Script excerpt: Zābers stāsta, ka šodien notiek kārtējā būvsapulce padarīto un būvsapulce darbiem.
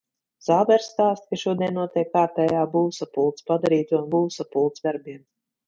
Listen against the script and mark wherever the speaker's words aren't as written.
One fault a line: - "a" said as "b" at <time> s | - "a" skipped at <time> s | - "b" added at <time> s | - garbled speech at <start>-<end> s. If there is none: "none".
none